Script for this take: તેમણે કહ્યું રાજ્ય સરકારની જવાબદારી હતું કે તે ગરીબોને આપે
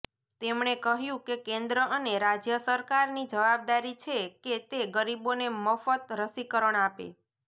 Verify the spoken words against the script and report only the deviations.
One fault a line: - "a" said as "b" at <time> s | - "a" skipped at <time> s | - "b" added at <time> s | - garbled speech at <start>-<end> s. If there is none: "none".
- "કે કેન્દ્ર અને" added at 1.2 s
- "હતું" said as "છે" at 4.0 s
- "મફત રસીકરણ" added at 5.6 s